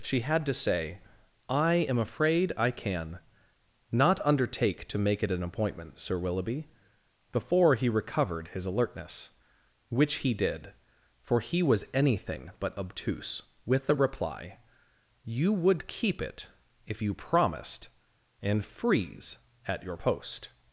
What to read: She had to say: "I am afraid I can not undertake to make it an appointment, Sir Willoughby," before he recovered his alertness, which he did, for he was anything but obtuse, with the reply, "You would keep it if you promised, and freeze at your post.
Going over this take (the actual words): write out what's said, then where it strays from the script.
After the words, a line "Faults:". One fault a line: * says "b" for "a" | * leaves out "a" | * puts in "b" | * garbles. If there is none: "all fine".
She had to say: "I am afraid I can not undertake to make it an appointment, Sir Willoughby," before he recovered his alertness, which he did, for he was anything but obtuse, with the reply, "You would keep it if you promised, and freeze at your post.
Faults:
all fine